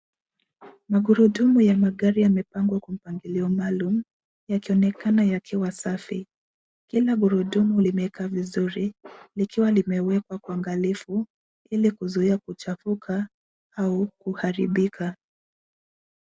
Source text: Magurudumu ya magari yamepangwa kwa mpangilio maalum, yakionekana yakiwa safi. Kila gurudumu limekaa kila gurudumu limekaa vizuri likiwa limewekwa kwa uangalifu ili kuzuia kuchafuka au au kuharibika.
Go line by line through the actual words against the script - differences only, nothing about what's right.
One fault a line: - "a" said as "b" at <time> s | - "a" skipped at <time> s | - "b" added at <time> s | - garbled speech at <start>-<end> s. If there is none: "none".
- "kila gurudumu limekaa" skipped at 8.3 s
- "au" skipped at 14.1 s